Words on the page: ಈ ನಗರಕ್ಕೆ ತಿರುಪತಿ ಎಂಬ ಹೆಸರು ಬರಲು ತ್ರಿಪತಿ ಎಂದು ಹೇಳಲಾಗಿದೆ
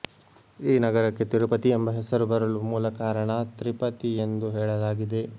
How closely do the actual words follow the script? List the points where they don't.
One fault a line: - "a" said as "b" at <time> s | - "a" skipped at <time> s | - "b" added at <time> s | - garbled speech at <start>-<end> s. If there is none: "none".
- "ಮೂಲ ಕಾರಣ" added at 2.7 s